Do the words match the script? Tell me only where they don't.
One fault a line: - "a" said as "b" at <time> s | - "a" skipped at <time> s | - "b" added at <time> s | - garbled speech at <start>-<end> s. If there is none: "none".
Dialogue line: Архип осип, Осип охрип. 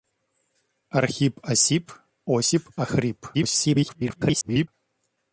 - garbled speech at 3.3-4.7 s